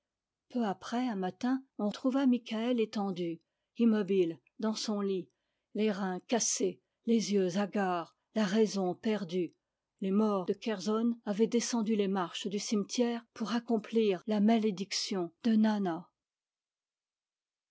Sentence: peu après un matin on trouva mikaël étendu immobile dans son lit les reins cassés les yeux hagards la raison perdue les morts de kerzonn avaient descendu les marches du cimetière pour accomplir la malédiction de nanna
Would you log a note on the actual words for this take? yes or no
no